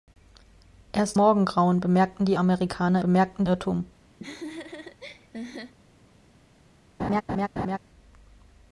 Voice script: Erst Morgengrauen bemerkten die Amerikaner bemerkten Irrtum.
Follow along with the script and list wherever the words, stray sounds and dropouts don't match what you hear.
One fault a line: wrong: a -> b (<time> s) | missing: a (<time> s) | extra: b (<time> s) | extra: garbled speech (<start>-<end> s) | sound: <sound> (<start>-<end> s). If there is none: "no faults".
sound: laugh (4.2-5.7 s)
sound: laugh (7.0-7.8 s)